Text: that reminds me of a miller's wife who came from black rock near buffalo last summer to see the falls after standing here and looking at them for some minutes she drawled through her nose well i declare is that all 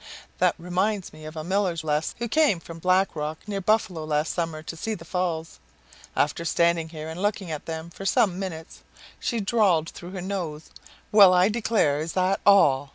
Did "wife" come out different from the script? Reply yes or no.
yes